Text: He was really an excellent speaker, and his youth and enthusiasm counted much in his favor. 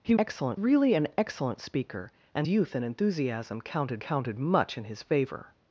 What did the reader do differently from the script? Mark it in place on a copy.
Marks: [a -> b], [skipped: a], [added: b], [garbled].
He [was -> excellent] really an excellent speaker, and [skipped: his] youth and enthusiasm counted [added: counted] much in his favor.